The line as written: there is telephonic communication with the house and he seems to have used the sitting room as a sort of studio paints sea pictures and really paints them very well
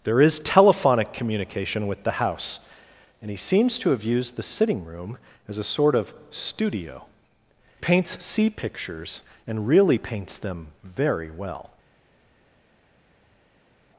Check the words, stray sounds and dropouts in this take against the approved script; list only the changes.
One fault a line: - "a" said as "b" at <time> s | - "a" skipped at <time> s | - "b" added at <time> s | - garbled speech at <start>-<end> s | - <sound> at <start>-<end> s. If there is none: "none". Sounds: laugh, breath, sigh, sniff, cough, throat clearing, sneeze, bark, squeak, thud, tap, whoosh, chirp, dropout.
none